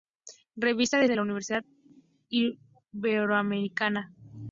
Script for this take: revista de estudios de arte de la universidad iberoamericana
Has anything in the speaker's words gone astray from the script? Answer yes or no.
yes